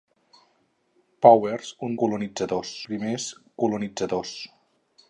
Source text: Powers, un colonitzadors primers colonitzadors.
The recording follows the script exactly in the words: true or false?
true